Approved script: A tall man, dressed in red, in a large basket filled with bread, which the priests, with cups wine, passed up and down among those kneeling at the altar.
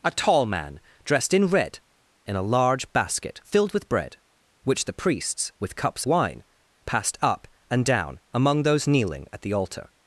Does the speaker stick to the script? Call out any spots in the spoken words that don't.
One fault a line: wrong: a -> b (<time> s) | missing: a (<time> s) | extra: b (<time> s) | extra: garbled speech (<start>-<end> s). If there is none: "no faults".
no faults